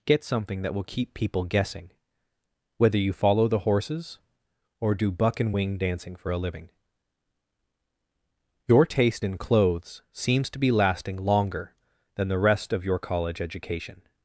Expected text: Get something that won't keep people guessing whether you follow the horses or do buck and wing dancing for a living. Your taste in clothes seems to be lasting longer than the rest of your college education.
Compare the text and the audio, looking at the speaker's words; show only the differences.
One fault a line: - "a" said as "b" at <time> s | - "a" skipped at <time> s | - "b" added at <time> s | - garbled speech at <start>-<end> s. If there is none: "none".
- "won't" said as "will" at 0.7 s